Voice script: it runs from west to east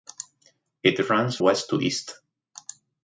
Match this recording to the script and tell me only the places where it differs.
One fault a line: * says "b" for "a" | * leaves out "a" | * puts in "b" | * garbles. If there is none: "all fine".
* leaves out "from"